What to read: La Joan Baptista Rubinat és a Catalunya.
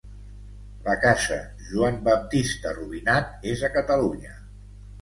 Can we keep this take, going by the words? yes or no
no